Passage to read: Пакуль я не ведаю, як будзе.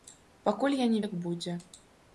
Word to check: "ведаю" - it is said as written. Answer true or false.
false